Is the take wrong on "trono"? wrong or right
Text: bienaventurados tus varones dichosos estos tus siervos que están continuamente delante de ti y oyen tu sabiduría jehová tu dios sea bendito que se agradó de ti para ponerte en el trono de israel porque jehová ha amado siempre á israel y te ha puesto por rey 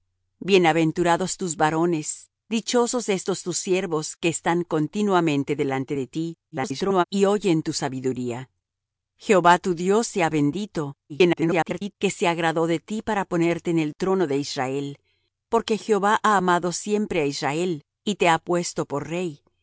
right